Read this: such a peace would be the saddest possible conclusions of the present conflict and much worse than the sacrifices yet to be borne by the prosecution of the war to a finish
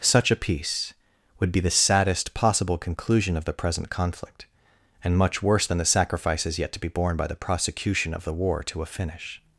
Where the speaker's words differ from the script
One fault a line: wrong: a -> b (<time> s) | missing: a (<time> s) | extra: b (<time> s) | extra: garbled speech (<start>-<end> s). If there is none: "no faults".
wrong: conclusions -> conclusion (2.8 s)